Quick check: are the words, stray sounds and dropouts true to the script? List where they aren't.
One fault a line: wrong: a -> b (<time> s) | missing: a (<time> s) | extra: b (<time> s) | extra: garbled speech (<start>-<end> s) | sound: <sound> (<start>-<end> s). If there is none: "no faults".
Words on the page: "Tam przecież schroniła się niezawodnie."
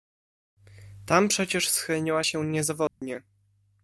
sound: dropout (2.9-3.0 s)